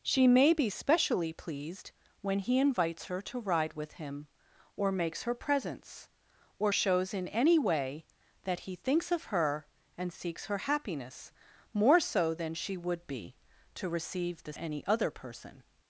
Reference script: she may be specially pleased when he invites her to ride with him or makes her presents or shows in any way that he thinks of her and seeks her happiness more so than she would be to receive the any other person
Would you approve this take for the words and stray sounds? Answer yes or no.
yes